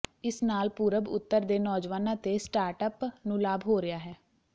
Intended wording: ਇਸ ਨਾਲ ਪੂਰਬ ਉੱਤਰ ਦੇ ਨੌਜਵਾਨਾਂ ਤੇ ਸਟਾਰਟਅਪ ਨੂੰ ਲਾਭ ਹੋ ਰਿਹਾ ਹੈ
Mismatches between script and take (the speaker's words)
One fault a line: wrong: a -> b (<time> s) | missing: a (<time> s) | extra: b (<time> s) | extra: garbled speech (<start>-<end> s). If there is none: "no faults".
no faults